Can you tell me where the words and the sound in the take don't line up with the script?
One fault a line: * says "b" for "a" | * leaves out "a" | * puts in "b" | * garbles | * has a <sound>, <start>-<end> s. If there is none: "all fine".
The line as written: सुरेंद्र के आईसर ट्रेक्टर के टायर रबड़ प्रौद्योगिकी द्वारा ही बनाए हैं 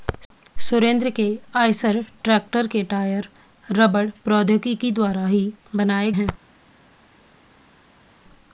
all fine